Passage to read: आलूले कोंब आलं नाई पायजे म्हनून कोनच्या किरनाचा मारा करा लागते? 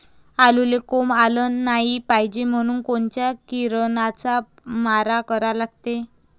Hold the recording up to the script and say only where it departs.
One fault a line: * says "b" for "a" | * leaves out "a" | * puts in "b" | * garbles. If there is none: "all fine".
all fine